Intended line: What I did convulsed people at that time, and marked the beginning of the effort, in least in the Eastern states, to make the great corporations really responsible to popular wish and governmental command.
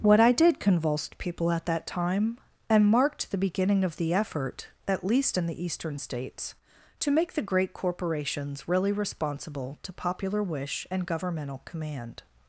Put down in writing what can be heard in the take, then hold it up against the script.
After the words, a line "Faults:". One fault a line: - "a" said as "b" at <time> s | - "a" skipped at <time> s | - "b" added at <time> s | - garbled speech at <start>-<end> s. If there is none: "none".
What I did convulsed people at that time, and marked the beginning of the effort, at least in the Eastern states, to make the great corporations really responsible to popular wish and governmental command.
Faults:
- "in" said as "at" at 4.9 s